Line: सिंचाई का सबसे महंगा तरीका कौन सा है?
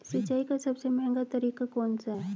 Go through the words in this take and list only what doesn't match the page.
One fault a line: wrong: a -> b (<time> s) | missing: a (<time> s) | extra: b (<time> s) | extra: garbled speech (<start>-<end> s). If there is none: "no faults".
no faults